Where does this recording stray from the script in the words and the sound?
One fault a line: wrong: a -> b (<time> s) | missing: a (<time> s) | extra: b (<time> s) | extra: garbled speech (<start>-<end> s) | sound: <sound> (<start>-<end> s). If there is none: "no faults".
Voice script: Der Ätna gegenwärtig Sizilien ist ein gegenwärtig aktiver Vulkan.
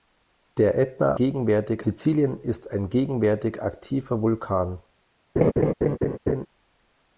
sound: laugh (5.4-6.5 s)